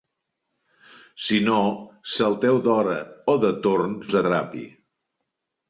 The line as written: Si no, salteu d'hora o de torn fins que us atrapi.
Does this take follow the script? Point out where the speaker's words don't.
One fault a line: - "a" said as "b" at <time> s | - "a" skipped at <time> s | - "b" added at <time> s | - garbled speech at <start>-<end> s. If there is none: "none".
- "fins que" skipped at 4.0 s